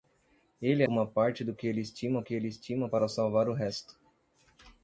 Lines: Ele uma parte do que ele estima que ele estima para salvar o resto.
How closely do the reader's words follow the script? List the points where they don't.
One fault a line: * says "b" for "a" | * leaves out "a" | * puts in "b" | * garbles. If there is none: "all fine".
all fine